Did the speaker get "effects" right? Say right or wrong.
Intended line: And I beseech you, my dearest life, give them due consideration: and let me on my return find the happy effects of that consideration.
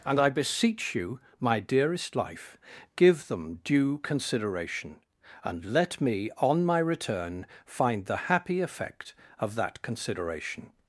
wrong